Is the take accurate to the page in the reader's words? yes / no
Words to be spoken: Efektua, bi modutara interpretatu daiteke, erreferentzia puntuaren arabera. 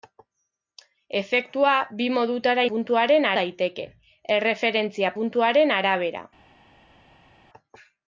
no